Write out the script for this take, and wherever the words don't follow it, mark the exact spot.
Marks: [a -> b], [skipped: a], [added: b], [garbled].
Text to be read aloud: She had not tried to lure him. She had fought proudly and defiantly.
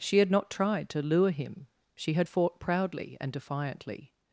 She had not tried to lure him. She had fought proudly and defiantly.